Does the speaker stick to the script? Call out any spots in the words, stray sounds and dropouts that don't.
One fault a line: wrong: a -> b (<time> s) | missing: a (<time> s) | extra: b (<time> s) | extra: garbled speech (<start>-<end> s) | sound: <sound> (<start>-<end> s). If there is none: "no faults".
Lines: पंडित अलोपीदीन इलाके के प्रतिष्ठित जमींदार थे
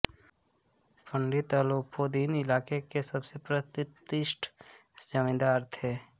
extra: सबसे (3.1 s)